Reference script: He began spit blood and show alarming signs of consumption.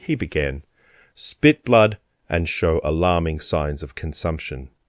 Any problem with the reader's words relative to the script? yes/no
no